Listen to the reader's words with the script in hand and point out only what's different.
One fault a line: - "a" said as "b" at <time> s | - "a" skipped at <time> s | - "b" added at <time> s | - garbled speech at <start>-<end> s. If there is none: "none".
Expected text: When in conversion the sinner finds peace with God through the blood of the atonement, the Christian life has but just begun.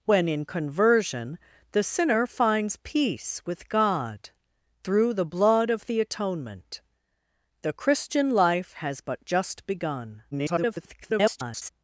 - garbled speech at 10.3-11.7 s